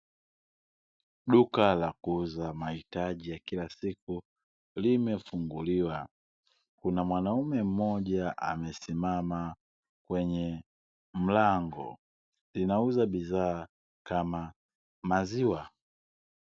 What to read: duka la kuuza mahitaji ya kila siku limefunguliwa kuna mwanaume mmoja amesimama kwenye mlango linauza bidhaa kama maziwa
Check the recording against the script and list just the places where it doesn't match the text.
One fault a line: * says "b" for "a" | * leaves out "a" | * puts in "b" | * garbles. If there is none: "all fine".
all fine